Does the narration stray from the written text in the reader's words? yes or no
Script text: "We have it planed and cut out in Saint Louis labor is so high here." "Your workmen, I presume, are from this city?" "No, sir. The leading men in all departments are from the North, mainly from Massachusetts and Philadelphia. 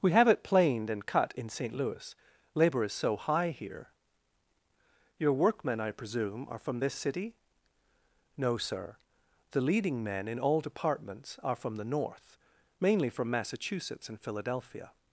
yes